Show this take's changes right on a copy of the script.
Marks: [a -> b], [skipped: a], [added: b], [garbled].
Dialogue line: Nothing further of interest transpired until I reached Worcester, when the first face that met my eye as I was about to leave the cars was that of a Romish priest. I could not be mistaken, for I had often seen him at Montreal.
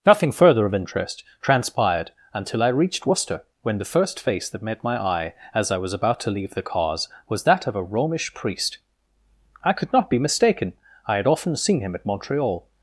Nothing further of interest transpired until I reached Worcester, when the first face that met my eye as I was about to leave the cars was that of a Romish priest. I could not be mistaken, [skipped: for] I had often seen him at Montreal.